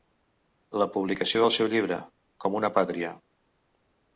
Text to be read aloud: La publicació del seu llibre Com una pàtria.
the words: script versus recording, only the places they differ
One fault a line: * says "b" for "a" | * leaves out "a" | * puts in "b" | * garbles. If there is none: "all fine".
all fine